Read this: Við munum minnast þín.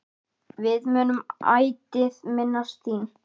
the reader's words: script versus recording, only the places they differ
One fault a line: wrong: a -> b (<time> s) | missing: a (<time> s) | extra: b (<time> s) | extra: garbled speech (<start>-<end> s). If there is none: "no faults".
extra: ætíð (1.6 s)